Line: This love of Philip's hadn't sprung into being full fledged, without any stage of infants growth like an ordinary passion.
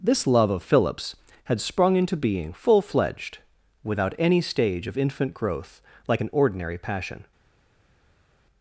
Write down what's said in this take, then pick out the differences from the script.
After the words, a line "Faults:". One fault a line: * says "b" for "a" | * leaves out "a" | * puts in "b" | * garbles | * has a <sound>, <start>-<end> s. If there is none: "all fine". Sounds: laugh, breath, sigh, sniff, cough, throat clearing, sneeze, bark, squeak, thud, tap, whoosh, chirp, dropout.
This love of Philip's had sprung into being full fledged, without any stage of infant growth like an ordinary passion.
Faults:
* says "had" for "hadn't"
* says "infant" for "infants"